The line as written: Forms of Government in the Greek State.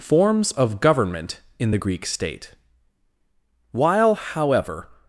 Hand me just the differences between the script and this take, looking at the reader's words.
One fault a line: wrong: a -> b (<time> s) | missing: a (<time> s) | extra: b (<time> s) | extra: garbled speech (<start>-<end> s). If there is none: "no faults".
extra: While however (3.7 s)